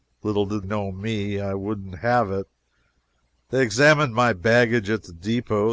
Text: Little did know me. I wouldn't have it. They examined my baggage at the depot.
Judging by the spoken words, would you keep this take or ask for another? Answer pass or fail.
pass